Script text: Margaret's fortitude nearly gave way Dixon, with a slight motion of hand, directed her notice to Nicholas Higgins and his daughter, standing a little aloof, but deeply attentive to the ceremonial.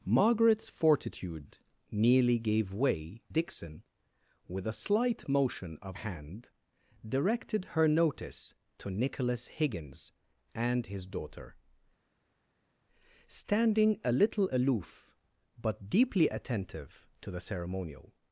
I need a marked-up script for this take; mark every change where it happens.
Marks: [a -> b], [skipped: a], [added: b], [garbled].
Margaret's fortitude nearly gave way Dixon, with a slight motion of hand, directed her notice to Nicholas Higgins and his daughter, standing a little aloof, but deeply attentive to the ceremonial.